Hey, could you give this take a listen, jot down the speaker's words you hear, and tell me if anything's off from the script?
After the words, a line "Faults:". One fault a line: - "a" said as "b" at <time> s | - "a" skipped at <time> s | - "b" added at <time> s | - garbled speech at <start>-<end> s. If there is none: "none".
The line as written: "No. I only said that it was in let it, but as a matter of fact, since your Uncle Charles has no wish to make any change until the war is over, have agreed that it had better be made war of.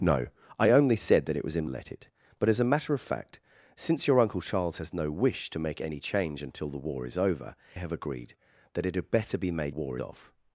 "No. I only said that it was in let it, but as a matter of fact, since your Uncle Charles has no wish to make any change until the war is over, have agreed that it had better be made war of.
Faults:
none